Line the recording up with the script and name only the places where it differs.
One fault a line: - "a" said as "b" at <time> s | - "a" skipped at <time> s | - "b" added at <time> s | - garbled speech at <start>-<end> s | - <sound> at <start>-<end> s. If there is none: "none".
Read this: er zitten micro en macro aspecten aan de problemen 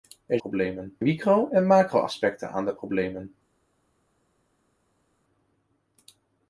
- "zitten" said as "problemen" at 0.4 s